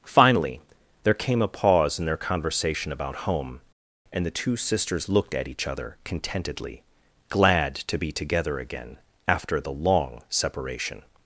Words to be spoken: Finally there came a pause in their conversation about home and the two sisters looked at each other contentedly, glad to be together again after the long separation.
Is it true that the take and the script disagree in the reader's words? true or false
false